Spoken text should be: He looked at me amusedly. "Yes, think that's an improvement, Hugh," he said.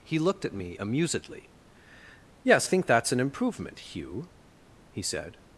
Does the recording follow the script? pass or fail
pass